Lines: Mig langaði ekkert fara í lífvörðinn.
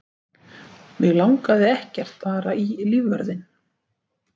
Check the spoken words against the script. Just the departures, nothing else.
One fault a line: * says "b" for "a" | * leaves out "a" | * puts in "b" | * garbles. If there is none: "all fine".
all fine